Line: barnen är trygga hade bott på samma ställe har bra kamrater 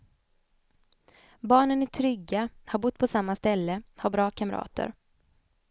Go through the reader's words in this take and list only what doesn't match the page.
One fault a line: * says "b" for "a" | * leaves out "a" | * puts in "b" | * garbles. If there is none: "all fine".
* says "har" for "hade"